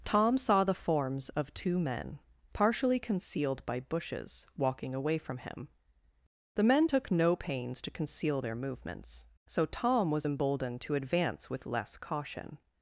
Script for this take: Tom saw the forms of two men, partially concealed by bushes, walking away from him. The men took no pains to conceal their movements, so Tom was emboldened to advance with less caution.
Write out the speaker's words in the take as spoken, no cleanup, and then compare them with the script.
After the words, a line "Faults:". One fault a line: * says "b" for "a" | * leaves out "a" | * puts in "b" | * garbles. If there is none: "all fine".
Tom saw the forms of two men, partially concealed by bushes, walking away from him. The men took no pains to conceal their movements, so Tom was emboldened to advance with less caution.
Faults:
all fine